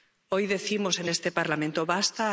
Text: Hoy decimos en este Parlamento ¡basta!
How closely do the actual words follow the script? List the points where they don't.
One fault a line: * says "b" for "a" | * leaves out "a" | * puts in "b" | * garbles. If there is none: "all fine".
all fine